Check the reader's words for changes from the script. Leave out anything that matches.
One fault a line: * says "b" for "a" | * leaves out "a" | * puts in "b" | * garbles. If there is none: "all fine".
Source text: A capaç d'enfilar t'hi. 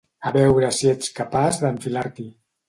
* puts in "veure si ets"